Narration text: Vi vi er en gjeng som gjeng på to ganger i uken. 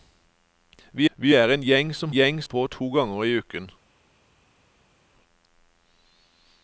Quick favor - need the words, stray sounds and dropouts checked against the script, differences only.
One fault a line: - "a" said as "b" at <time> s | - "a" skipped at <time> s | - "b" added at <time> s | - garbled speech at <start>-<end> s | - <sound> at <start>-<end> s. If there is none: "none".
none